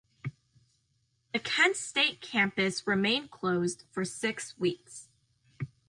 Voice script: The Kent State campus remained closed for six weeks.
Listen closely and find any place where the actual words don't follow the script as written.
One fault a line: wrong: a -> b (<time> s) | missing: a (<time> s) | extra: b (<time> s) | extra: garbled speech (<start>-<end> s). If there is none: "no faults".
no faults